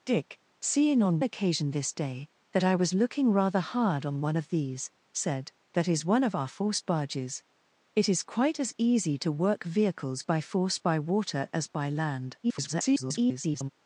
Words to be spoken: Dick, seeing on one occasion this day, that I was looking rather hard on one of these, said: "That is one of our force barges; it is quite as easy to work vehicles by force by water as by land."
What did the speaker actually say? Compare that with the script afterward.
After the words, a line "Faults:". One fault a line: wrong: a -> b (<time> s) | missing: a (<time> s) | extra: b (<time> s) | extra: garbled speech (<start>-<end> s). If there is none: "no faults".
Dick, seeing on occasion this day, that I was looking rather hard on one of these, said: "That is one of our force barges; it is quite as easy to work vehicles by force by water as by land." [garbled]
Faults:
missing: one (1.2 s)
extra: garbled speech (12.4-13.7 s)